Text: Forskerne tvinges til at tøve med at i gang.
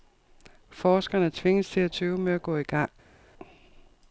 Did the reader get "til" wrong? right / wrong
right